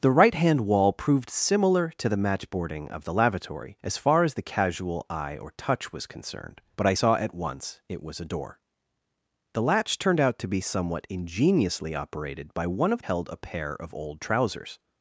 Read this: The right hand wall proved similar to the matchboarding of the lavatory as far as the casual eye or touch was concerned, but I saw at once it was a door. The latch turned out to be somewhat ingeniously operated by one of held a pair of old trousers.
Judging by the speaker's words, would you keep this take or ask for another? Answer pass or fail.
pass